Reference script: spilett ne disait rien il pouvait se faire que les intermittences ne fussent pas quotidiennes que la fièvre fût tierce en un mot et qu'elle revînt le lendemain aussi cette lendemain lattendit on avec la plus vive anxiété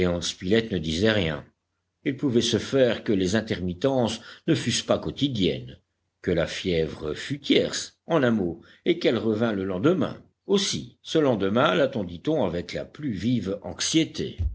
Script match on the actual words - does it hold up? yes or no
no